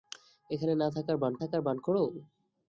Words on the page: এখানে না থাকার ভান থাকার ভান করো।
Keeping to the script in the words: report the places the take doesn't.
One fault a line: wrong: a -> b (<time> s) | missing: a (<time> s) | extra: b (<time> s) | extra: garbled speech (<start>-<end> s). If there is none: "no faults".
no faults